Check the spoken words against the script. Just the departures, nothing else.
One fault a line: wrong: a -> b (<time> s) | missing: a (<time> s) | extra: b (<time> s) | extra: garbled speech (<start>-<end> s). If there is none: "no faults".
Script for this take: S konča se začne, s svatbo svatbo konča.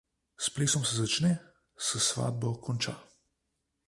wrong: konča -> plesom (0.5 s)
missing: svatbo (2.5 s)